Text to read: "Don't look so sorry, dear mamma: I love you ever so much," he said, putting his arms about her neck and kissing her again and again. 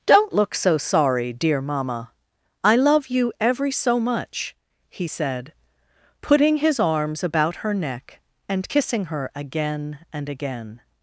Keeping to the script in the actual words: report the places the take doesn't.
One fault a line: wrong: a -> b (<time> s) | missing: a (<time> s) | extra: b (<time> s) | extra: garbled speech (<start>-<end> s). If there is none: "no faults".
wrong: ever -> every (3.4 s)